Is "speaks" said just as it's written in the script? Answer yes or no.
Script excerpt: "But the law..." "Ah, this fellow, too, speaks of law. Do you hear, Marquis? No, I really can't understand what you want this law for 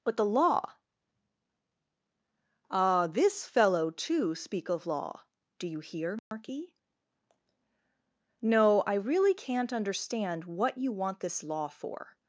no